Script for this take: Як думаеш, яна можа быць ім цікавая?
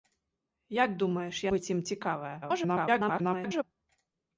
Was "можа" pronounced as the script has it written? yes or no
no